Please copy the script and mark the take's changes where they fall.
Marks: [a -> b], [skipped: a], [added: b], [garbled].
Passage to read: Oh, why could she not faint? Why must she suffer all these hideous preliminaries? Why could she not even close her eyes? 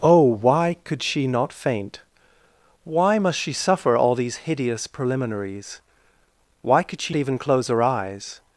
Oh, why could she not faint? Why must she suffer all these hideous preliminaries? Why could she [skipped: not] even close her eyes?